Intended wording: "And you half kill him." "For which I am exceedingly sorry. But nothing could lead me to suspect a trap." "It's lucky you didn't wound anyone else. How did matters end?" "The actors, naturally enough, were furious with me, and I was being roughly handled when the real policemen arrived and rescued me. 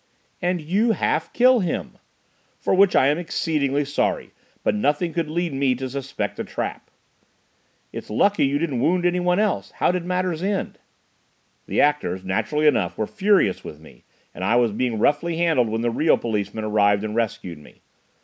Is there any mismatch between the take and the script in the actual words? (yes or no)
no